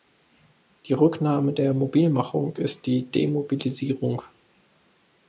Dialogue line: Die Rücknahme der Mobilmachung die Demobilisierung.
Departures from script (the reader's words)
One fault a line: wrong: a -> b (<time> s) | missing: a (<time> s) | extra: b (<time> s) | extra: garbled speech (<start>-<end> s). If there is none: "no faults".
extra: ist (2.5 s)